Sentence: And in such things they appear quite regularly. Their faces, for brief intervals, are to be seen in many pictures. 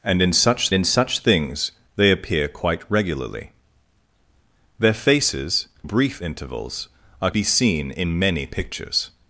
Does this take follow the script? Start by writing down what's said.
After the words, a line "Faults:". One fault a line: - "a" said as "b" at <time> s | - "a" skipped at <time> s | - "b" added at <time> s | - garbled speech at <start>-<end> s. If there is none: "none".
And in such in such things they appear quite regularly. Their faces, brief intervals, are be seen in many pictures.
Faults:
- "in such" added at 0.7 s
- "for" skipped at 5.7 s
- "to" skipped at 7.3 s